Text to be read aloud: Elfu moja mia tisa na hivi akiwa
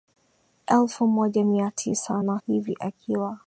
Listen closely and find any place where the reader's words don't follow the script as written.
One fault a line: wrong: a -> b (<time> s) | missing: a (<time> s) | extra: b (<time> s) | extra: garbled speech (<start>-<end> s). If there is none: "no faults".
no faults